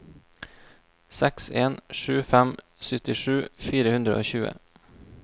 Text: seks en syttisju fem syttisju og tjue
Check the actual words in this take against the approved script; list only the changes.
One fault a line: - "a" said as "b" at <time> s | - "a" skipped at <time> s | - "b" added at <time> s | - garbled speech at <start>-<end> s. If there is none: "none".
- "syttisju" said as "sju" at 2.0 s
- "fire hundre" added at 3.7 s